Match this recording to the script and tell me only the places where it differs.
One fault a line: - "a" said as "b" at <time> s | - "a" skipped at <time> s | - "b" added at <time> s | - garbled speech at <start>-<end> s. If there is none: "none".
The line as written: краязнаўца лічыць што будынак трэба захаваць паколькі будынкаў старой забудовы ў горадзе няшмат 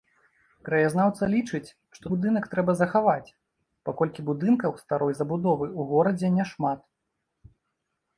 none